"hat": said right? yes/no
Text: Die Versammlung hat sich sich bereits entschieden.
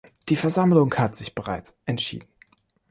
yes